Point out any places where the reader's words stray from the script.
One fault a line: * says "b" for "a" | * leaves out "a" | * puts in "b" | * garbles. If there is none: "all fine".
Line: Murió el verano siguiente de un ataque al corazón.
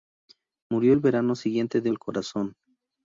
* leaves out "un ataque"